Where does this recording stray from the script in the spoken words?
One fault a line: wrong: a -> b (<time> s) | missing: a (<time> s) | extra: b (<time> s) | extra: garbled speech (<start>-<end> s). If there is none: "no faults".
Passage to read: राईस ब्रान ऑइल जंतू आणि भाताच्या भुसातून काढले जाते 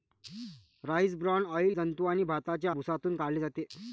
no faults